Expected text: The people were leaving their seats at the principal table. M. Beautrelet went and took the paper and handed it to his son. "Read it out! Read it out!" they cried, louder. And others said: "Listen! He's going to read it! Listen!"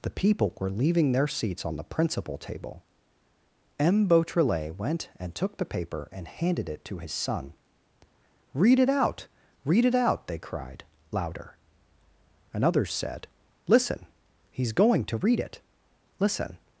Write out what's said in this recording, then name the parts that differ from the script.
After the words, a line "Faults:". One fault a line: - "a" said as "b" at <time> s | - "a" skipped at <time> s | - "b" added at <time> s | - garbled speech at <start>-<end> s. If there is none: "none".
The people were leaving their seats on the principal table. M. Beautrelet went and took the paper and handed it to his son. "Read it out! Read it out!" they cried, louder. And others said: "Listen! He's going to read it! Listen!"
Faults:
- "at" said as "on" at 1.6 s